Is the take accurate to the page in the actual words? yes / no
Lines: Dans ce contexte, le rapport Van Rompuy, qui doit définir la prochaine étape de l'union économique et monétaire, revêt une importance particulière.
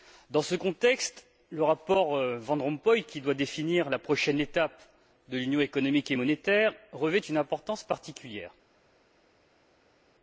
yes